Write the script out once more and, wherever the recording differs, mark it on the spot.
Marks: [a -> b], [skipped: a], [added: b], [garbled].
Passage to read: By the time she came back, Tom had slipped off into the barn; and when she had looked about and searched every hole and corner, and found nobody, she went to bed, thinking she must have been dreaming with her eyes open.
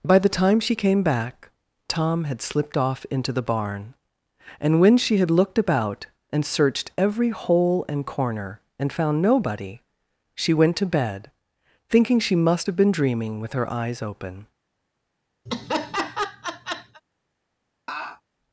By the time she came back, Tom had slipped off into the barn; and when she had looked about and searched every hole and corner, and found nobody, she went to bed, thinking she must have been dreaming with her eyes open.